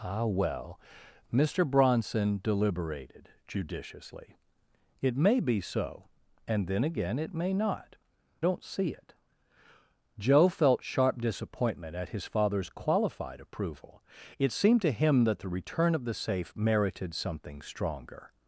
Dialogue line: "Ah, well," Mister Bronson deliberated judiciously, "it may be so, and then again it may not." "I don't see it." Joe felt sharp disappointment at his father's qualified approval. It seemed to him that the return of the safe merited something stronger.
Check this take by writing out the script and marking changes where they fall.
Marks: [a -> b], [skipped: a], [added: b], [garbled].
"Ah, well," Mister Bronson deliberated judiciously, "it may be so, and then again it may not." [skipped: "I] don't see it." Joe felt sharp disappointment at his father's qualified approval. It seemed to him that the return of the safe merited something stronger.